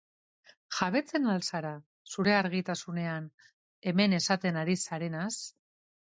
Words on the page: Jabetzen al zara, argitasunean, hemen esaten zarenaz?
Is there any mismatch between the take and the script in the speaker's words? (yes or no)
yes